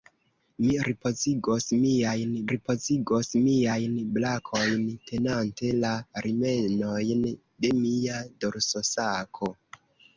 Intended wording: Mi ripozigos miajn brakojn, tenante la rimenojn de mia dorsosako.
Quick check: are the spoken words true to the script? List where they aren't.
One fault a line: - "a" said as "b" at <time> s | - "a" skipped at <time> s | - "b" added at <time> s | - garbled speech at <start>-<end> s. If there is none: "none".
- "ripozigos miajn" added at 2.5 s